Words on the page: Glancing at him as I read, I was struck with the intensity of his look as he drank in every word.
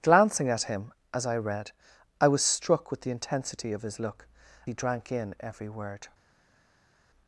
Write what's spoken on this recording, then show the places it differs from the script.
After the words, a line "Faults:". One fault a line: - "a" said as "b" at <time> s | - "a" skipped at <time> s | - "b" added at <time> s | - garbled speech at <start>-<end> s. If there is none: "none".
Glancing at him as I read, I was struck with the intensity of his look he drank in every word.
Faults:
- "as" skipped at 4.3 s